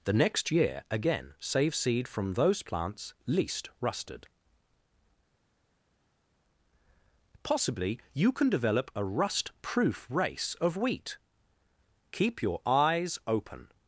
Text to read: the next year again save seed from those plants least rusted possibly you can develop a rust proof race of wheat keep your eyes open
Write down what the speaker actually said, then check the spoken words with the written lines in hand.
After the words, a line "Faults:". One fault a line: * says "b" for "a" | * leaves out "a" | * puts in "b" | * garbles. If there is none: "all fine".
the next year again save seed from those plants least rusted possibly you can develop a rust proof race of wheat keep your eyes open
Faults:
all fine